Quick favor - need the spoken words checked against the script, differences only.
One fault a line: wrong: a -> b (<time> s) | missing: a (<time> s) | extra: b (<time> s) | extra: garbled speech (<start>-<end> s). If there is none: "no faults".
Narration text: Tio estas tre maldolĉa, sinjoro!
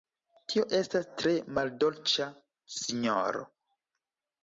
no faults